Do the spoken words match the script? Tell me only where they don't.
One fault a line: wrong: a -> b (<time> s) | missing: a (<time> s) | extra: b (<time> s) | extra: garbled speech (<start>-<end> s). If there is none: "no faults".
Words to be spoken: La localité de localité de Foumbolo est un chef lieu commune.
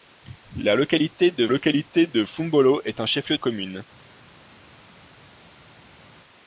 no faults